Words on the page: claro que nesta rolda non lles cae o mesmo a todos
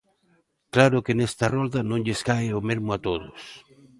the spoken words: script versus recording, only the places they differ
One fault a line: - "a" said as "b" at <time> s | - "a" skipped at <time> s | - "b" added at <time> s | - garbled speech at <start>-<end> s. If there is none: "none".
none